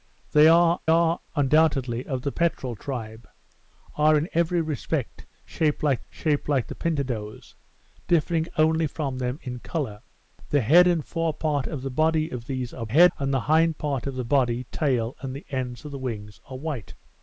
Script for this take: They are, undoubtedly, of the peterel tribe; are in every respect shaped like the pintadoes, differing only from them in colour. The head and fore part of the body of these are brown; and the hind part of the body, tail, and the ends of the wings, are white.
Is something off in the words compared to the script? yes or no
yes